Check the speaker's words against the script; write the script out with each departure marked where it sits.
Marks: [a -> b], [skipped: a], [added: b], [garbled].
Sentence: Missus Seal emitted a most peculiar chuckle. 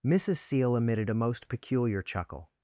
Missus Seal emitted a most peculiar chuckle.